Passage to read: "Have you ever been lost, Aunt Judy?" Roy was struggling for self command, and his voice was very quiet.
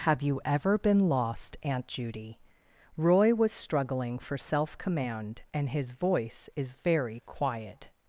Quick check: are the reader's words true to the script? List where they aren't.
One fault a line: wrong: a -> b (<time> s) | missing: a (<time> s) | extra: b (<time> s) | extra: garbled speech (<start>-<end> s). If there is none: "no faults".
wrong: was -> is (6.6 s)